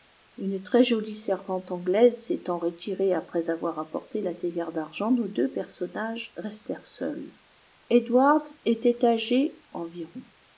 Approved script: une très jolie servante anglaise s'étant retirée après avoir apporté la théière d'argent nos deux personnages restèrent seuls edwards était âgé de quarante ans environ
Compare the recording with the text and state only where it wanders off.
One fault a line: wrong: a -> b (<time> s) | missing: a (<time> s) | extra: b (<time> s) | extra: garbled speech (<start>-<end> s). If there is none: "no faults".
missing: de quarante ans (9.6 s)